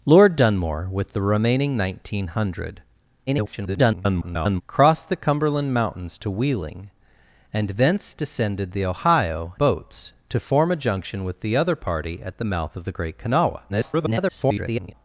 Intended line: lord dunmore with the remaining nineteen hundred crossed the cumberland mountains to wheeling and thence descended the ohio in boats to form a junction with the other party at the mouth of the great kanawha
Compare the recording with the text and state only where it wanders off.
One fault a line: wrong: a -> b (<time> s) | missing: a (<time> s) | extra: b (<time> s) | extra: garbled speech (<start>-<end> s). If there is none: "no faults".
extra: garbled speech (3.3-4.6 s)
missing: in (9.5 s)
extra: garbled speech (13.7-14.9 s)